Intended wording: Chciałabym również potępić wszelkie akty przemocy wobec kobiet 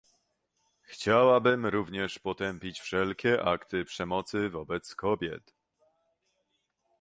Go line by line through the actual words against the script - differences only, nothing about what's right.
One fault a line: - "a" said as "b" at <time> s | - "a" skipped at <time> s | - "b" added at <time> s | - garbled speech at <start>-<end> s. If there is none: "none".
none